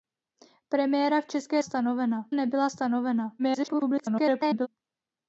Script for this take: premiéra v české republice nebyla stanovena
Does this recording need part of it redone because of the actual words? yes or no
yes